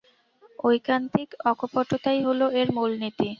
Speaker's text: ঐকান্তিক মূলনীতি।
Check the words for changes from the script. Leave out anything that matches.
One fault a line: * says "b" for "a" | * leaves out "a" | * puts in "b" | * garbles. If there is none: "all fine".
* puts in "অকপটতাই হল এর"